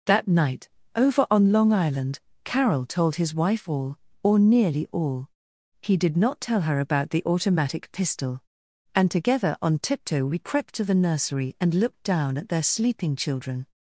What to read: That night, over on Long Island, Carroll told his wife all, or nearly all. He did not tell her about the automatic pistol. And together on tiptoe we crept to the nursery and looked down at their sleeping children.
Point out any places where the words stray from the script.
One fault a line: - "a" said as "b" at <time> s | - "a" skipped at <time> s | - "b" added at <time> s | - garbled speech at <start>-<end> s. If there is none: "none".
none